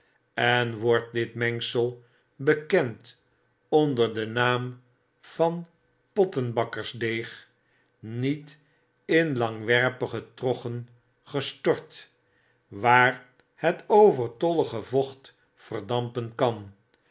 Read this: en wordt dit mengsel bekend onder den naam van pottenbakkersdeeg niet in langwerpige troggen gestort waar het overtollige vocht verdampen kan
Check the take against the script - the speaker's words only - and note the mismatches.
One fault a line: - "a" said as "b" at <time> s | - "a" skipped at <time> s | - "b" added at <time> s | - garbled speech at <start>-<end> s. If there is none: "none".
none